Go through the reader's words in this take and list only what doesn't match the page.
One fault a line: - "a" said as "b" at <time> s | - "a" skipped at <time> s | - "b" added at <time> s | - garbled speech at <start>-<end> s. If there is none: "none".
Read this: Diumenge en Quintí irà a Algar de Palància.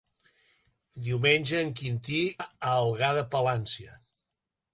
- "irà" skipped at 2.2 s